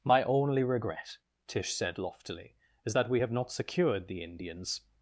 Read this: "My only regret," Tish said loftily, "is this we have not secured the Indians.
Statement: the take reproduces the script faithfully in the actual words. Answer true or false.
false